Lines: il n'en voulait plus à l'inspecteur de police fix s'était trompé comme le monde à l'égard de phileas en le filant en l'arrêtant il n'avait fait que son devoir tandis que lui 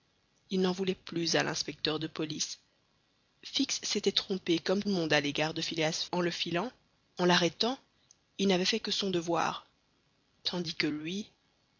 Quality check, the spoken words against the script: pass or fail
pass